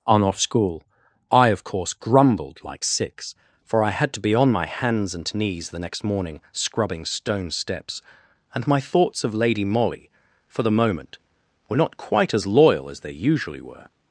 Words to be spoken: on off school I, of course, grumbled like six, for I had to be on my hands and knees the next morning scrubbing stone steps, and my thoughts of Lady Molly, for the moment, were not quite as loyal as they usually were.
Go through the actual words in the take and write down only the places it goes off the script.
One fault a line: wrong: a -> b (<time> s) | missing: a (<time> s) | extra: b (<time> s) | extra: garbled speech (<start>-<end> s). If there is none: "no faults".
no faults